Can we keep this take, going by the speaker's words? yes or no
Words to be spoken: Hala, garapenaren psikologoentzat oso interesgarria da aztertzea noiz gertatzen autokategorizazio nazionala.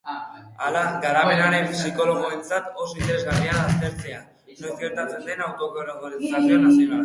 no